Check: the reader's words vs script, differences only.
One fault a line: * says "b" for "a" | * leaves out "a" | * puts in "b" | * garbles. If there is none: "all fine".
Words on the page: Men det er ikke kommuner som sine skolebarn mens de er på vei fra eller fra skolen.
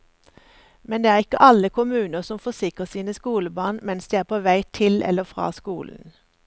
* puts in "alle"
* puts in "forsikrer"
* says "til" for "fra"